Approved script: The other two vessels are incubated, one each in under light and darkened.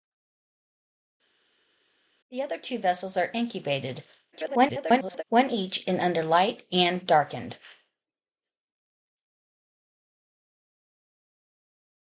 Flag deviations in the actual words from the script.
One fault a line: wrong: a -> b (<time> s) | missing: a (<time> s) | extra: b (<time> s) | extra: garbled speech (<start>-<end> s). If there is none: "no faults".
extra: garbled speech (4.3-5.2 s)